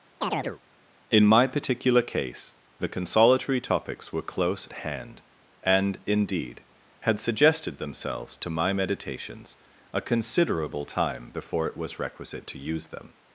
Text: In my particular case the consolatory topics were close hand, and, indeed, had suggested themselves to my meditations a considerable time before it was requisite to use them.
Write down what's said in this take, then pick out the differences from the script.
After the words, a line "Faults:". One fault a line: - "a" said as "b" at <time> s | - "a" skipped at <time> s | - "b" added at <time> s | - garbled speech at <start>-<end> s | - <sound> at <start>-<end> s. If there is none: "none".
In my particular case the consolatory topics were close hand, and, indeed, had suggested themselves to my meditations a considerable time before it was requisite to use them.
Faults:
- chirp at 0.2-0.6 s